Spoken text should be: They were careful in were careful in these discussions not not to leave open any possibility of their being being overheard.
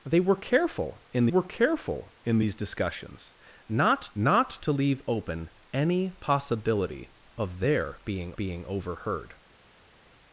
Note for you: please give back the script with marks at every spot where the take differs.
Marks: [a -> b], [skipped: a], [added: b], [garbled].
They were careful in were careful in these discussions not not to leave open any possibility of their being being overheard.